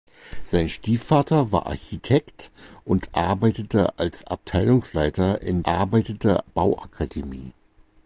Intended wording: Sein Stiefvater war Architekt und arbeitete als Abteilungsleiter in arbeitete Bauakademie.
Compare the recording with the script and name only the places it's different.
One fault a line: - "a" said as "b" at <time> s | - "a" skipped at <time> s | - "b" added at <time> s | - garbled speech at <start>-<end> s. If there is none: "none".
none